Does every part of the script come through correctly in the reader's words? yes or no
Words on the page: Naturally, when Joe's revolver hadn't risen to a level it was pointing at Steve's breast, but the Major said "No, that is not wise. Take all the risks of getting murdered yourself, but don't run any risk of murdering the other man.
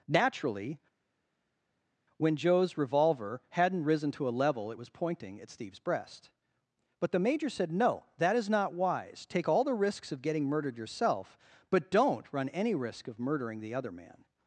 yes